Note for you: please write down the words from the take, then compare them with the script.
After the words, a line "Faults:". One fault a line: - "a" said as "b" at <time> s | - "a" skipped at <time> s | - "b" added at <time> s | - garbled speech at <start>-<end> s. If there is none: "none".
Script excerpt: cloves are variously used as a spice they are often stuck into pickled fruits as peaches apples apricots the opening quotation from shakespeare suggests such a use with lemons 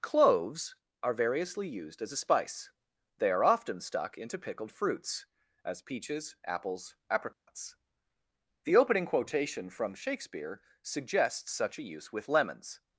cloves are variously used as a spice they are often stuck into pickled fruits as peaches apples apricots the opening quotation from shakespeare suggests such a use with lemons
Faults:
none